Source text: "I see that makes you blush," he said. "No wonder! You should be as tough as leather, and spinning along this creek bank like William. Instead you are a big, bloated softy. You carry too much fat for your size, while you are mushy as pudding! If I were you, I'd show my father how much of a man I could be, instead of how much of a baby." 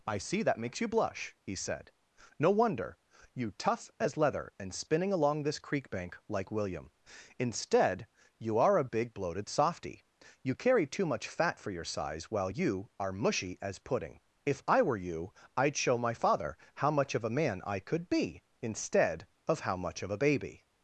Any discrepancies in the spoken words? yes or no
yes